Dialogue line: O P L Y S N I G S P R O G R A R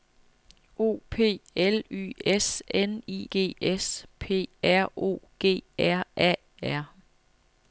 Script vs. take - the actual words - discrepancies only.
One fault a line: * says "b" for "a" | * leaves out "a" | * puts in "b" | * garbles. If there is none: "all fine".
all fine